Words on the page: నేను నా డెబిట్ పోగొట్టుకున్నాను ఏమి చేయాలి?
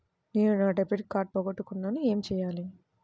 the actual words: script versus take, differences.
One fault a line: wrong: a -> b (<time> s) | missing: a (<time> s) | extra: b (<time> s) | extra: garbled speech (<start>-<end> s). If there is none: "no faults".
extra: కార్డ్ (1.1 s)